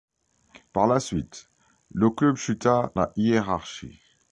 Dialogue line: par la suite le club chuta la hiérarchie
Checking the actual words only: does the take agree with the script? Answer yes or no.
yes